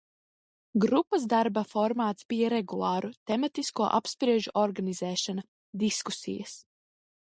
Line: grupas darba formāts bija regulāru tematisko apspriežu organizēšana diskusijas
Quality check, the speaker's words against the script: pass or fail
pass